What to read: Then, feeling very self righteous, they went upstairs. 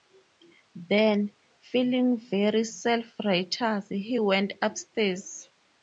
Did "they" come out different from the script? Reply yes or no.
yes